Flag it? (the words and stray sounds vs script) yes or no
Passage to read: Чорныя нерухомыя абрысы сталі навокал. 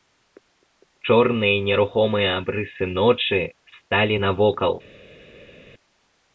yes